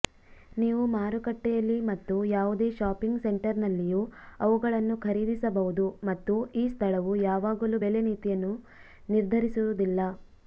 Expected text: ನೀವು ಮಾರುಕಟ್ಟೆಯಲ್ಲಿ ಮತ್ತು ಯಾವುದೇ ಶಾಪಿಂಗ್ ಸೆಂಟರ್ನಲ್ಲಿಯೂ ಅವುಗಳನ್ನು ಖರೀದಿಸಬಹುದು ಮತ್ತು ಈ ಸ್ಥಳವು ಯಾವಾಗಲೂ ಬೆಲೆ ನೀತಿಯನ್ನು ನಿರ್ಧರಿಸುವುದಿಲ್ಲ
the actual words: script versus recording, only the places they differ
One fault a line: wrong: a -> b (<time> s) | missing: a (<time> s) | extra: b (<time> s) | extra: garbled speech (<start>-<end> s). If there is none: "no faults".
no faults